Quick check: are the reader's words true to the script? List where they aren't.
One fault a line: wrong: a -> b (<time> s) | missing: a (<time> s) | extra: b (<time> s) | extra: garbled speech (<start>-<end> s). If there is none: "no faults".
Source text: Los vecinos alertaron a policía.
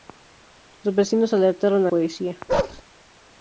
no faults